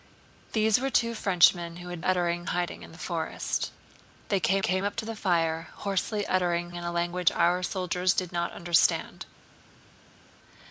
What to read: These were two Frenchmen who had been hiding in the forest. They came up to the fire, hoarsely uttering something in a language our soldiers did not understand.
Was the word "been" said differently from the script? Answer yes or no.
yes